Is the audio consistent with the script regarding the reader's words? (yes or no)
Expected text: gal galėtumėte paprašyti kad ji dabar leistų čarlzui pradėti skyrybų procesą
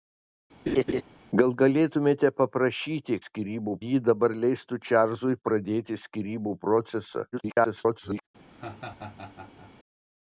no